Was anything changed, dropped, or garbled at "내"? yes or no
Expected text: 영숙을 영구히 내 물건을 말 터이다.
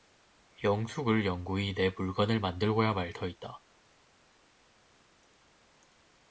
no